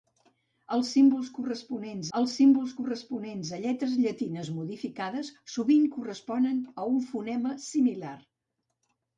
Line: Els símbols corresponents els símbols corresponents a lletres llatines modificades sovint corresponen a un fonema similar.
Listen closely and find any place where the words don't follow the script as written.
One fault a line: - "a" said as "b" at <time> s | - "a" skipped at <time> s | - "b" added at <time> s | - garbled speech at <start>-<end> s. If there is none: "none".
none